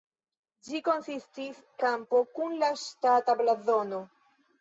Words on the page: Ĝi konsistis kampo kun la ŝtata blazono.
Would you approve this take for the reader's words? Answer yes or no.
yes